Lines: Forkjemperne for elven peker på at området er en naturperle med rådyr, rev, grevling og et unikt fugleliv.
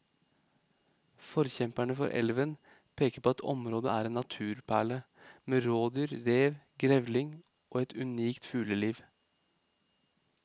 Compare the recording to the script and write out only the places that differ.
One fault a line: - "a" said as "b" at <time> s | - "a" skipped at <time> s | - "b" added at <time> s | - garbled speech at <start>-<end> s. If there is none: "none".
none